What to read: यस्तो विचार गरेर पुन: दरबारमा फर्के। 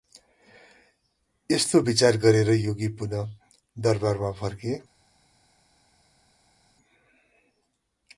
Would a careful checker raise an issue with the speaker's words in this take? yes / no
yes